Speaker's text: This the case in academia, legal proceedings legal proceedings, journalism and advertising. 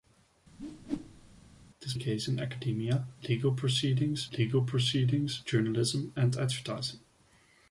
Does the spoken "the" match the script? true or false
true